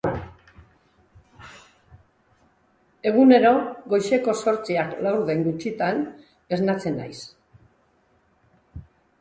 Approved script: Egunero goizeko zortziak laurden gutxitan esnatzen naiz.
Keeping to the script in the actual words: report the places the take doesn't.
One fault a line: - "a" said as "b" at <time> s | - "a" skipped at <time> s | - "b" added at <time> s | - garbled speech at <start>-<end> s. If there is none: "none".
none